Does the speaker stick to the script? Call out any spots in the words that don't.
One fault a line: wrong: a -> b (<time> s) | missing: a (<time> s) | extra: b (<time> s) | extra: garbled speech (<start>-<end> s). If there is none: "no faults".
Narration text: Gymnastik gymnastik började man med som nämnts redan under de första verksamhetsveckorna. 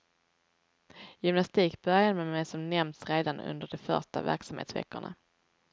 missing: gymnastik (1.8 s)